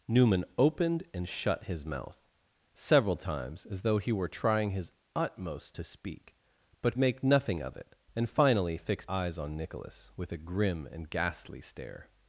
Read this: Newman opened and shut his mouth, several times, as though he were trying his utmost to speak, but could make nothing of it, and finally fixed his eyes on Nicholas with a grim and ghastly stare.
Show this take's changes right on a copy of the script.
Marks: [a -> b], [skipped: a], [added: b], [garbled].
Newman opened and shut his mouth, several times, as though he were trying his utmost to speak, but [skipped: could] make nothing of it, and finally fixed [skipped: his] eyes on Nicholas with a grim and ghastly stare.